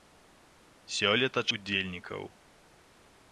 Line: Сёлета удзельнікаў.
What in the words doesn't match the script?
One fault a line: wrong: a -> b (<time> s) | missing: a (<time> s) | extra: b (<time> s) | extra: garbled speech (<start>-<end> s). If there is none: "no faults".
no faults